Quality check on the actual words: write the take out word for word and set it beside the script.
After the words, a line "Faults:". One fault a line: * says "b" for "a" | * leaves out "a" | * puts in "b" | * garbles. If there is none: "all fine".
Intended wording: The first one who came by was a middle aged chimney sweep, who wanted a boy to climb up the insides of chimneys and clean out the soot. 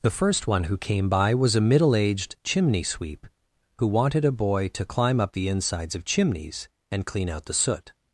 The first one who came by was a middle aged chimney sweep, who wanted a boy to climb up the insides of chimneys and clean out the soot.
Faults:
all fine